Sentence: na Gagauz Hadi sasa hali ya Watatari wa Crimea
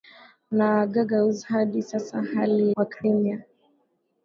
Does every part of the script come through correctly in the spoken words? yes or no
no